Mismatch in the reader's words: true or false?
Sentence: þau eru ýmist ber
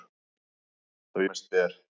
true